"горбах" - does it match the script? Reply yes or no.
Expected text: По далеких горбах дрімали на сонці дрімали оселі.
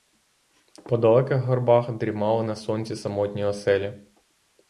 yes